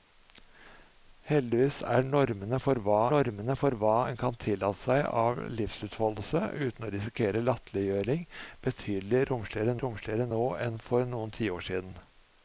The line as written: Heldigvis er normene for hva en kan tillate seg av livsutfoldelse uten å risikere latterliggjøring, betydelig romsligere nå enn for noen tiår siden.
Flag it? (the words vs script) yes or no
yes